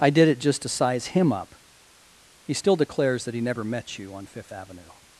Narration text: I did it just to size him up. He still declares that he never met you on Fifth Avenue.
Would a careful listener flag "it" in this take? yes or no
no